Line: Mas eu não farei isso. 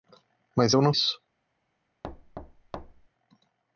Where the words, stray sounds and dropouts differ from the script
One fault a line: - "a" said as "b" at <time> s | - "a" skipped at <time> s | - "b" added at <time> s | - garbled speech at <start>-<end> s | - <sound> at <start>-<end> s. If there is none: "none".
- "farei" skipped at 0.9 s
- thud at 2.0-3.1 s